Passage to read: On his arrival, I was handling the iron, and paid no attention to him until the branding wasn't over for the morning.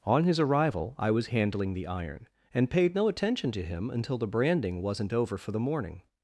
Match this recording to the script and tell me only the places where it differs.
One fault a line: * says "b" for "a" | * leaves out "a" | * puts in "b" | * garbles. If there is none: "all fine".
all fine